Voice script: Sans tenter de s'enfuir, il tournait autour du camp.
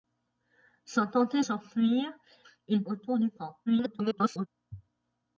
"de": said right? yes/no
no